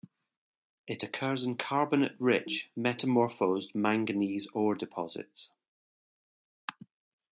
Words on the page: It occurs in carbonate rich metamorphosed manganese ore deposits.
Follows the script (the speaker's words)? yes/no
yes